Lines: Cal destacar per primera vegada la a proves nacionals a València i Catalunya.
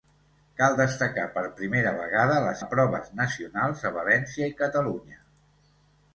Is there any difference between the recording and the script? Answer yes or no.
no